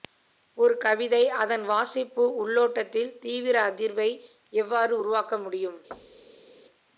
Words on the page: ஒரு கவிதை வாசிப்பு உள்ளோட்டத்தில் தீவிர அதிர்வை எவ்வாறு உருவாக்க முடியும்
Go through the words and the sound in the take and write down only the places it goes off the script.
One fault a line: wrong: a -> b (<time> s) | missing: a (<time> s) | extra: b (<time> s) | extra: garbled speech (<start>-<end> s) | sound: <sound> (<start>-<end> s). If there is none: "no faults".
extra: அதன் (1.4 s)
sound: thud (5.9-6.5 s)